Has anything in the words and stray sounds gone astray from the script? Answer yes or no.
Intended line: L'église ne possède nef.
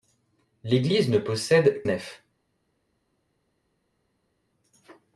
no